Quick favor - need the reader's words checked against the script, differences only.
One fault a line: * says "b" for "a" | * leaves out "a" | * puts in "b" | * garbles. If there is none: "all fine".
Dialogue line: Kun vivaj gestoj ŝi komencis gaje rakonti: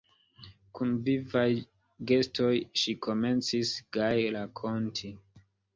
all fine